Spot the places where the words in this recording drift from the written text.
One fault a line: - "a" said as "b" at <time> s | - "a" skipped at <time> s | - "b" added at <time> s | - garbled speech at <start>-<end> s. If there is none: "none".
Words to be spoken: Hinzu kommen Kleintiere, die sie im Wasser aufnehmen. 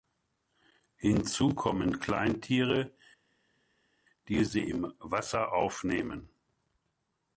none